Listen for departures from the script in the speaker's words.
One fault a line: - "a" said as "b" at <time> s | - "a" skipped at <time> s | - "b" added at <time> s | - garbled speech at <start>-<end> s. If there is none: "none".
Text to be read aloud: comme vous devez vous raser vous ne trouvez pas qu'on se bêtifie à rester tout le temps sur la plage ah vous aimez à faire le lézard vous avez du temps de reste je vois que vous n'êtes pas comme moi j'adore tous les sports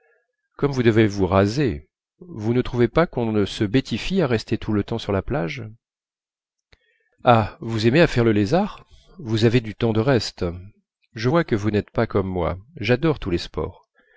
none